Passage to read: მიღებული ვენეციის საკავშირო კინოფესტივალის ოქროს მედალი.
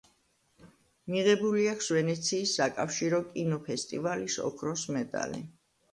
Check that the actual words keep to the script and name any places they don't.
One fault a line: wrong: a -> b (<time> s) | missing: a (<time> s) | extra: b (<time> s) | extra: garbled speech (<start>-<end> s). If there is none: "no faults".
extra: აქვს (1.7 s)